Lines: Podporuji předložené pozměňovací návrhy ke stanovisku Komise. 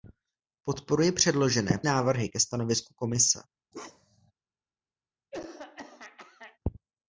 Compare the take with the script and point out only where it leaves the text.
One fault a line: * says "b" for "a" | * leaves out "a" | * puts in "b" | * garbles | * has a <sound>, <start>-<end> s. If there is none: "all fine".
* leaves out "pozměňovací"
* has a bark, 3.7-4.3 s
* has a throat clearing, 5.3-6.6 s